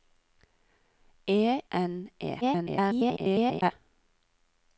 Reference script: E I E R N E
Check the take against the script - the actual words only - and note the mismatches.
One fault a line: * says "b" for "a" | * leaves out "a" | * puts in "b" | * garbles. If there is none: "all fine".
* leaves out "I E R"
* garbles